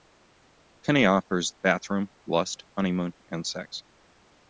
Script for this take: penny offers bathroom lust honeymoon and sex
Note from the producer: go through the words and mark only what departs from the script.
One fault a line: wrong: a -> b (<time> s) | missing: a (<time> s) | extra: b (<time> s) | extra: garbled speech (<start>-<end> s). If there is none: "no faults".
no faults